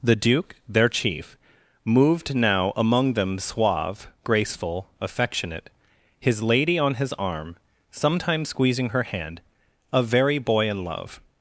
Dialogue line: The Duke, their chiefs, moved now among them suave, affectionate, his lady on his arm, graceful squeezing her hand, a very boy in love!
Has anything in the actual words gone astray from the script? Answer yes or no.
yes